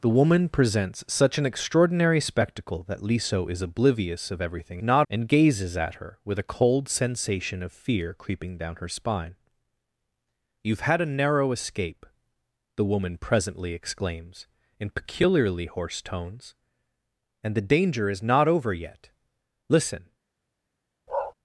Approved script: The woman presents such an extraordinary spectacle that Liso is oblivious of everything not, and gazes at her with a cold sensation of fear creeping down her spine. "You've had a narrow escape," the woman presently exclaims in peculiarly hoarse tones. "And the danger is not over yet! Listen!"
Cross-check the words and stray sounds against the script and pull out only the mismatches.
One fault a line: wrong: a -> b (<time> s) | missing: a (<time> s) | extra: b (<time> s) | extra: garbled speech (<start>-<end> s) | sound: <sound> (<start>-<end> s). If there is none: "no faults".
sound: bark (21.1-21.3 s)